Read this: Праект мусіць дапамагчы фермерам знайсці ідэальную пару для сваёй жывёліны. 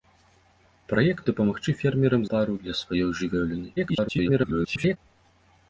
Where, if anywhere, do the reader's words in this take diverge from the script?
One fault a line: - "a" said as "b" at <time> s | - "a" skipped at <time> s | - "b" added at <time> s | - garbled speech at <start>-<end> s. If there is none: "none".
- "мусіць" skipped at 1.2 s
- "знайсці ідэальную" skipped at 2.2 s
- garbled speech at 3.8-5.0 s